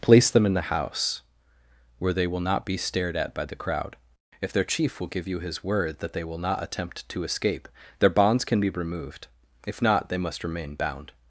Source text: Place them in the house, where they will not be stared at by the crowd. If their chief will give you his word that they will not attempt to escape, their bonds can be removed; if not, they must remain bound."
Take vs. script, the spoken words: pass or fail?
pass